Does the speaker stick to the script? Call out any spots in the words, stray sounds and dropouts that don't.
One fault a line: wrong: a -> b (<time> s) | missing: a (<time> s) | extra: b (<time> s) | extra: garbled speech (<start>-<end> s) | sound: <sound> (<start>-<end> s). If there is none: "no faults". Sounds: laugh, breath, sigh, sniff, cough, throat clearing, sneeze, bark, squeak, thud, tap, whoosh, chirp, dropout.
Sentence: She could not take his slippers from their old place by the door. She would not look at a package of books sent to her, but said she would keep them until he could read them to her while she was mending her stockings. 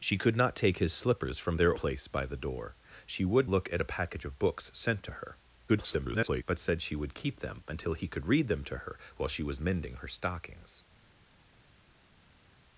missing: old (1.8 s)
missing: not (3.5 s)
extra: garbled speech (5.7-6.4 s)